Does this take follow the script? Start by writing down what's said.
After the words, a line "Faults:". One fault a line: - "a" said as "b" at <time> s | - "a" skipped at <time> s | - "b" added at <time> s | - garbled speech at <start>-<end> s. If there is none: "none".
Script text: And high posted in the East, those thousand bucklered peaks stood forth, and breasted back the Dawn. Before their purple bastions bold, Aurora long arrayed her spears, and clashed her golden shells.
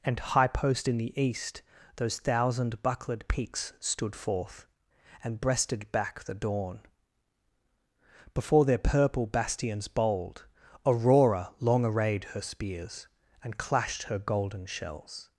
And high post in the East, those thousand bucklered peaks stood forth, and breasted back the Dawn. Before their purple bastions bold, Aurora long arrayed her spears, and clashed her golden shells.
Faults:
- "posted" said as "post" at 0.5 s